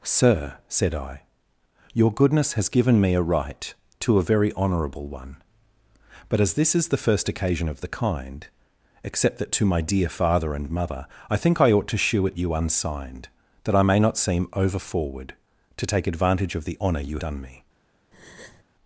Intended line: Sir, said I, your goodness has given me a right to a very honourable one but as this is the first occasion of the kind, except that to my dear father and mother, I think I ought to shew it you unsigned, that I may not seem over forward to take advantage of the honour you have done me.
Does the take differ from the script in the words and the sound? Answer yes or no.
yes